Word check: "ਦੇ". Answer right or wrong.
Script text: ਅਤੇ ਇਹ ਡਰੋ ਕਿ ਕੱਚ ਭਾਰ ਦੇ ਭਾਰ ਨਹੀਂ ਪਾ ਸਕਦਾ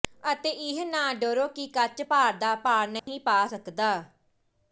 wrong